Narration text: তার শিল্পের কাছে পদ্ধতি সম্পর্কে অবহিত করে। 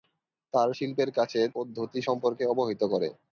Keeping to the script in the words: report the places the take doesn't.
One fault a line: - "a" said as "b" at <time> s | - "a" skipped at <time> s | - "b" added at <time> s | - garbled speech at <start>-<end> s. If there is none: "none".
none